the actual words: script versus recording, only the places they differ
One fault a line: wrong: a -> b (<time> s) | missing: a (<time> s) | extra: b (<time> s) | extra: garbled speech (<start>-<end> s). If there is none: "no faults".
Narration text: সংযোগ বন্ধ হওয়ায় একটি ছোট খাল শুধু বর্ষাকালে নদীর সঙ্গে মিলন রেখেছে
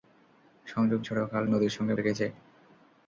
missing: বন্ধ হওয়ায় একটি (1.0 s)
missing: শুধু বর্ষাকালে (1.4 s)
missing: মিলন (1.9 s)